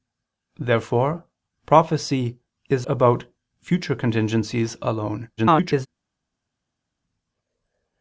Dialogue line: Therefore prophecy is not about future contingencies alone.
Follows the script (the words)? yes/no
no